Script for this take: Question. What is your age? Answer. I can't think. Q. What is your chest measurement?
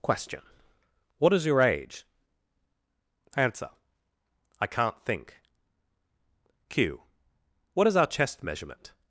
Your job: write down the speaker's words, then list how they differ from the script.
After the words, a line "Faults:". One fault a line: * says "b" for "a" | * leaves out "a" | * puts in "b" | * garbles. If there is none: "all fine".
Question. What is your age? Answer. I can't think. Q. What is our chest measurement?
Faults:
* says "our" for "your"